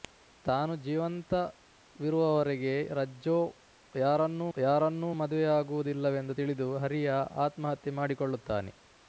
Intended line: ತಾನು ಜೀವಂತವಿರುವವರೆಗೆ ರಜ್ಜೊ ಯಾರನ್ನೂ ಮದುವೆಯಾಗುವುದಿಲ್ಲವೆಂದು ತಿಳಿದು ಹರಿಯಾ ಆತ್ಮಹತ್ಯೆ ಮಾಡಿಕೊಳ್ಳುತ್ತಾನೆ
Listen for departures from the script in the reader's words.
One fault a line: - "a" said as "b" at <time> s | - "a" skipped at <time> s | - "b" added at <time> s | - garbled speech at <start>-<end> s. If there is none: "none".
- "ಯಾರನ್ನೂ" added at 4.5 s